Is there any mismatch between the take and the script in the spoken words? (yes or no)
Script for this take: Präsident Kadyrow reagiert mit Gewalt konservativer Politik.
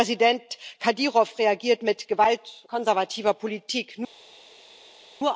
no